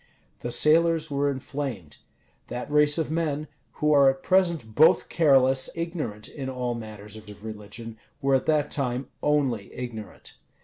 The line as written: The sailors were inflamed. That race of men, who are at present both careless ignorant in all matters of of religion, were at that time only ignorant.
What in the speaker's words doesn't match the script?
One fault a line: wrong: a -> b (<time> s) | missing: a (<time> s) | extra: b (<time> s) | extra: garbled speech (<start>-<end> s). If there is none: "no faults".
no faults